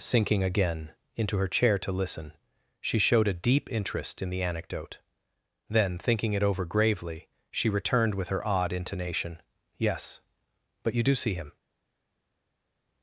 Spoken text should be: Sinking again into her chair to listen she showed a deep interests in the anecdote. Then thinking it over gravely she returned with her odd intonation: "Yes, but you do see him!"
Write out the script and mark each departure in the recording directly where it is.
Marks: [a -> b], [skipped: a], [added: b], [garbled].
Sinking again into her chair to listen she showed a deep [interests -> interest] in the anecdote. Then thinking it over gravely she returned with her odd intonation: "Yes, but you do see him!"